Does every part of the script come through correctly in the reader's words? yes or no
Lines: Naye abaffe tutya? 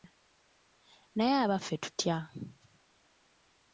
yes